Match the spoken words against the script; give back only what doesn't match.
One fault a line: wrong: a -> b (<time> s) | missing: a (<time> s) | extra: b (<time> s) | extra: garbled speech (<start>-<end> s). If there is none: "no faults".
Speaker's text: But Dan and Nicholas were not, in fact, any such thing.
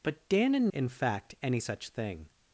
missing: Nicholas were not (0.7 s)